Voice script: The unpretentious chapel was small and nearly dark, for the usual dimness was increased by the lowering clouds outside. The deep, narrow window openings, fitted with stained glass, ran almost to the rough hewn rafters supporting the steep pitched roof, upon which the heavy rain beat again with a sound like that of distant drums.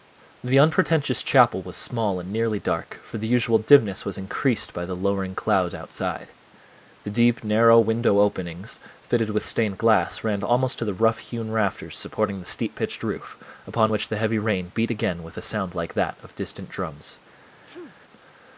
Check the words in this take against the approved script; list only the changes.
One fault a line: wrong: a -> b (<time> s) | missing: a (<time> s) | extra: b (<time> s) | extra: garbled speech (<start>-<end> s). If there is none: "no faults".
no faults